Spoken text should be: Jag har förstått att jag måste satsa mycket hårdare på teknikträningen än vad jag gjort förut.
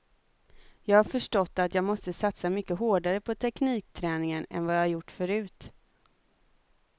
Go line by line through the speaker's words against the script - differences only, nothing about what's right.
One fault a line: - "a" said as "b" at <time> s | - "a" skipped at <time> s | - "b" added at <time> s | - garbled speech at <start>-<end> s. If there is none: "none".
none